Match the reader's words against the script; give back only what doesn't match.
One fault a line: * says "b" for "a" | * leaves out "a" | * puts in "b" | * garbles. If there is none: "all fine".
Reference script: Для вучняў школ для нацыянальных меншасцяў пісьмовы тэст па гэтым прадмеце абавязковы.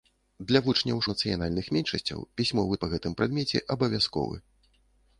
* leaves out "школ для"
* leaves out "тэст"